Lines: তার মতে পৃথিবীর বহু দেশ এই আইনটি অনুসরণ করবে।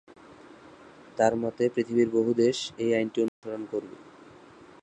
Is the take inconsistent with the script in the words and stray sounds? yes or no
yes